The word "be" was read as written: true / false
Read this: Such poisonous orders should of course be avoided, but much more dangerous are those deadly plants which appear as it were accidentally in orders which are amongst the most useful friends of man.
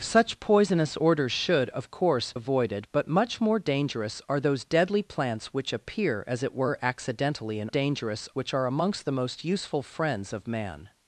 false